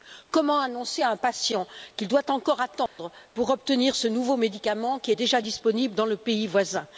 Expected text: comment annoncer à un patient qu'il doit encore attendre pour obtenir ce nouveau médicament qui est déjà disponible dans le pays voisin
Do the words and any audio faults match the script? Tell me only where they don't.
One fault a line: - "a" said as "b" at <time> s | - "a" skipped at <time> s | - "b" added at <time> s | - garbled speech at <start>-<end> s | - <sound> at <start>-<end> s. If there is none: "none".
- dropout at 2.9-3.0 s